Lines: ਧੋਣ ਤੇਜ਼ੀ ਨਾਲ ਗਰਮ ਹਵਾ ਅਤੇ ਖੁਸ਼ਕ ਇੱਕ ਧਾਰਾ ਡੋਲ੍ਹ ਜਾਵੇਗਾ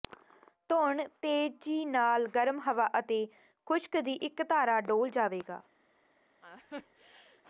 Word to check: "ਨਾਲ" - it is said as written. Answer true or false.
true